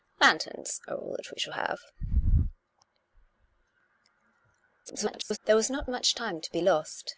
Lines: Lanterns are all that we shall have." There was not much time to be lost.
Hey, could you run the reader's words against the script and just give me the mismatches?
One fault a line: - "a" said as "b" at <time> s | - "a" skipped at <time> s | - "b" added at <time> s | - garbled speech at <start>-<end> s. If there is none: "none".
- garbled speech at 4.9-5.4 s